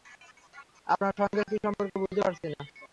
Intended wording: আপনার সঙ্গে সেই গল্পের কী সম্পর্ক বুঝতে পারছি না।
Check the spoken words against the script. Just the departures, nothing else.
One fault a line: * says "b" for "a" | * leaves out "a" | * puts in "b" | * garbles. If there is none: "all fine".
* leaves out "সেই গল্পের"